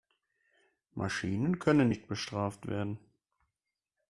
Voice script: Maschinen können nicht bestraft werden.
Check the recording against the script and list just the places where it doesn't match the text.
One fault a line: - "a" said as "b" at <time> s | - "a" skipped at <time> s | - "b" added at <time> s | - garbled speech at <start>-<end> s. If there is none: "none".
none